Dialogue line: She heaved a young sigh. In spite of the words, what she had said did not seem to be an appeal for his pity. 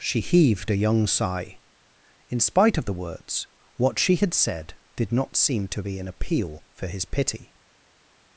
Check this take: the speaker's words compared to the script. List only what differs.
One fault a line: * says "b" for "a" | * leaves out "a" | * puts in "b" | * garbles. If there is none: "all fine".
all fine